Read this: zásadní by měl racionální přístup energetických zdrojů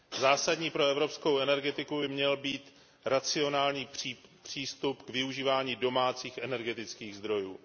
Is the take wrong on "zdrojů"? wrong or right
right